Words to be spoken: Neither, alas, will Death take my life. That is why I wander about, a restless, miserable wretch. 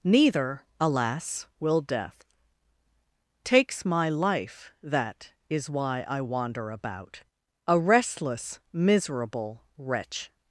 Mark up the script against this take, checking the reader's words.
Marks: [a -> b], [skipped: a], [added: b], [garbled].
Neither, alas, will Death [take -> takes] my life. That is why I wander about, a restless, miserable wretch.